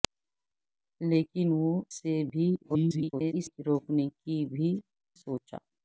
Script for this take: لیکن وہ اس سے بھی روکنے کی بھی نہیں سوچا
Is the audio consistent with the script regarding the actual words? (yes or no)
no